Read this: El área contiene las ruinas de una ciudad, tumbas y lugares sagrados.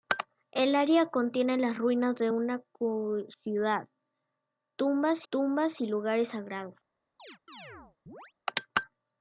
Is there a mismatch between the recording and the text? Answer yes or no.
yes